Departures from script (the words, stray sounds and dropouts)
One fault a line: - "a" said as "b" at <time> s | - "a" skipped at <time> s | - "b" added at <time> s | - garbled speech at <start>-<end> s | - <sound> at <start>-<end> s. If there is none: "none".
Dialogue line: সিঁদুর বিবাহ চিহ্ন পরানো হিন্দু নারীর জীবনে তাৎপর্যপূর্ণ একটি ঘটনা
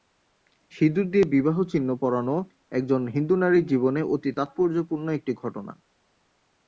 - "দিয়ে" added at 1.1 s
- "একজন" added at 2.7 s
- "অতি" added at 4.0 s